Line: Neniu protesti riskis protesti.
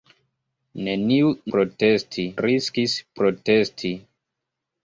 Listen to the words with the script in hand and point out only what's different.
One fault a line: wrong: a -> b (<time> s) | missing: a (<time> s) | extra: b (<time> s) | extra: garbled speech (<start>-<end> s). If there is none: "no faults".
no faults